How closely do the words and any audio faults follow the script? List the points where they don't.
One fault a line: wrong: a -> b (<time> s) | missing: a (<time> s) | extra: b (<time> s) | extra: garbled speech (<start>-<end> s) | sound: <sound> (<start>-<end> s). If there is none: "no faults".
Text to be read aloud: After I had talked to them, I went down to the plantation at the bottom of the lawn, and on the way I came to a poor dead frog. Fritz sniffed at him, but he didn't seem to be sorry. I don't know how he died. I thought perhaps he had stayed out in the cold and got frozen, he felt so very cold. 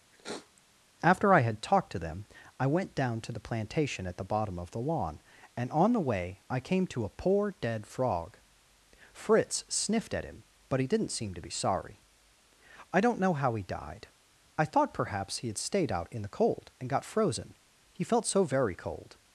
sound: sniff (0.1-0.6 s)